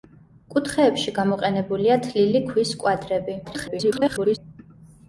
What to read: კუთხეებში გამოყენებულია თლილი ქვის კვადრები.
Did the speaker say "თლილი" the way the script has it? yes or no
yes